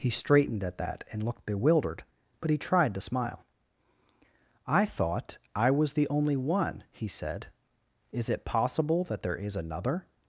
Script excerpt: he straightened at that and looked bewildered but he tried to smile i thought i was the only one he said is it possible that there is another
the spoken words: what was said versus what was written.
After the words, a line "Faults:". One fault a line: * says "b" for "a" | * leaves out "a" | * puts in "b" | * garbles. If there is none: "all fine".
he straightened at that and looked bewildered but he tried to smile i thought i was the only one he said is it possible that there is another
Faults:
all fine